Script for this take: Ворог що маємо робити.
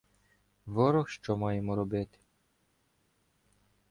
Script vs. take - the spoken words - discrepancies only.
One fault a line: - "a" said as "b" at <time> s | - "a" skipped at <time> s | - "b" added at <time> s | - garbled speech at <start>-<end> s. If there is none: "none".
none